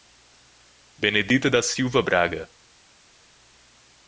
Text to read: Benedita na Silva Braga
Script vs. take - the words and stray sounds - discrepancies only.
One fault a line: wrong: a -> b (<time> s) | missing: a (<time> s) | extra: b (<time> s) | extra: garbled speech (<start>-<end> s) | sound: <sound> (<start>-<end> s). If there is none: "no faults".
wrong: na -> da (1.5 s)